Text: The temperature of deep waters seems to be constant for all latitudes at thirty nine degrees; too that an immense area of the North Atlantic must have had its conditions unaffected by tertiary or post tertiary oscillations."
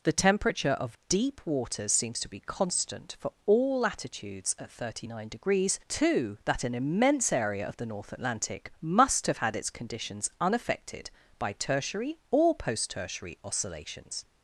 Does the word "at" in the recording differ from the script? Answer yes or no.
no